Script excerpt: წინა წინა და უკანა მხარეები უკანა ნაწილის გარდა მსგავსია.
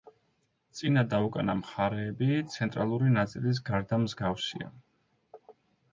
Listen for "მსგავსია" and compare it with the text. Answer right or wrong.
right